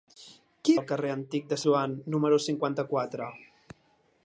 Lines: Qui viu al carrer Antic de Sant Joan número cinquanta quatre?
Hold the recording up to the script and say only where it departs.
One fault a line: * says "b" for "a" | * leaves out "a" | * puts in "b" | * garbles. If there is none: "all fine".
* leaves out "viu"
* leaves out "Sant"